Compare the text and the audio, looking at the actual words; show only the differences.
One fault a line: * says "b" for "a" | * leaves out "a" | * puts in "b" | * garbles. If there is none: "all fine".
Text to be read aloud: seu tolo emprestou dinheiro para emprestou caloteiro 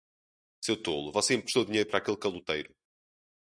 * puts in "você"
* says "aquele" for "emprestou"